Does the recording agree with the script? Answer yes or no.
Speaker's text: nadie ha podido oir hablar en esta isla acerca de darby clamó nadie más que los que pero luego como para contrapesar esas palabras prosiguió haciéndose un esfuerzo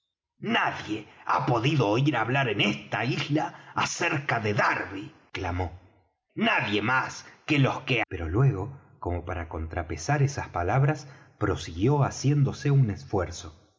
yes